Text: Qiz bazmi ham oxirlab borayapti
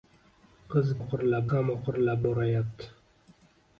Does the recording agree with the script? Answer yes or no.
no